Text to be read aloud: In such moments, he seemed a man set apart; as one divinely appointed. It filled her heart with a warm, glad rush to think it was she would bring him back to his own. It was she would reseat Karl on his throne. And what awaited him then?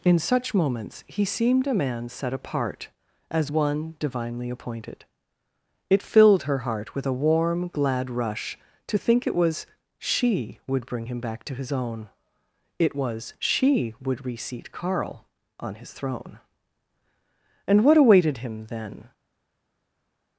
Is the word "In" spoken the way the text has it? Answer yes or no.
yes